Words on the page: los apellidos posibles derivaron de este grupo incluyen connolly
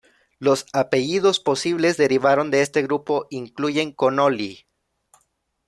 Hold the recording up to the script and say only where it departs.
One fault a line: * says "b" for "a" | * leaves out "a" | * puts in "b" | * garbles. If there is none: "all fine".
all fine